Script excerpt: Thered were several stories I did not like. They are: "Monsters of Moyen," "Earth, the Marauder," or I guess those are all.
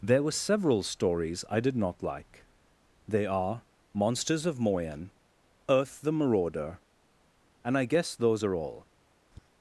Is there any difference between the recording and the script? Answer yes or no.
yes